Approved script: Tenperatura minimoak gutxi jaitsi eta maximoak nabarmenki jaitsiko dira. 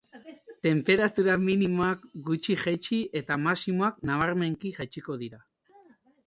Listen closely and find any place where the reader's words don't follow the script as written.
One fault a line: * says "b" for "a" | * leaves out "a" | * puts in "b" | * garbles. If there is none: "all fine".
all fine